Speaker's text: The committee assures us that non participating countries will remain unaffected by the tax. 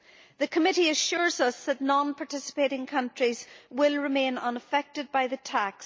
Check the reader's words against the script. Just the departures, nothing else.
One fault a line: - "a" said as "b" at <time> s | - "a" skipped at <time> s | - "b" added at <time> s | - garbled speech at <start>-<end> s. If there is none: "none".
none